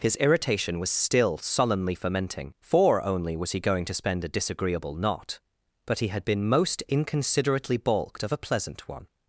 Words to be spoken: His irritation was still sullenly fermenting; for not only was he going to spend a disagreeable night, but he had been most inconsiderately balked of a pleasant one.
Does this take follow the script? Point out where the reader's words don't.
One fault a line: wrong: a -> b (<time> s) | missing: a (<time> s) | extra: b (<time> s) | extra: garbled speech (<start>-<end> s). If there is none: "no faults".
missing: not (3.0 s)
wrong: night -> knot (5.0 s)